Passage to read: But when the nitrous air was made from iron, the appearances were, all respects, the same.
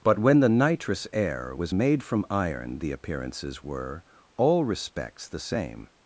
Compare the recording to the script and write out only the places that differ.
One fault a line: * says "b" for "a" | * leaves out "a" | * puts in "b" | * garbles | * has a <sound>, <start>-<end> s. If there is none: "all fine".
all fine